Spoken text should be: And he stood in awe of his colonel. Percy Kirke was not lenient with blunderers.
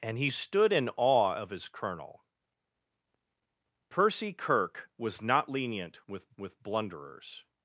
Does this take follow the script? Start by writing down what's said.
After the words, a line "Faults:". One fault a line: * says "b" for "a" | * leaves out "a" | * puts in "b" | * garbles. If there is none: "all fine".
And he stood in awe of his colonel. Percy Kirke was not lenient with with blunderers.
Faults:
* puts in "with"